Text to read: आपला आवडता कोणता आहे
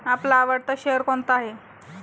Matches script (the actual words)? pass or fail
fail